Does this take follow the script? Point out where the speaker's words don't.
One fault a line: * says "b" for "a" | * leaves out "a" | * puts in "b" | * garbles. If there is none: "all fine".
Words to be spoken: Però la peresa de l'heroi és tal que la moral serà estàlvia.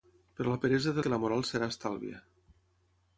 * leaves out "l'heroi és tal"